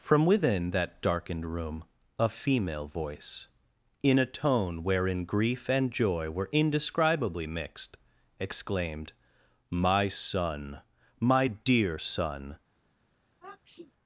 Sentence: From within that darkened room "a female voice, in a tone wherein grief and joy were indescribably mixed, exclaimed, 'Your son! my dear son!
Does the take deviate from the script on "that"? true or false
false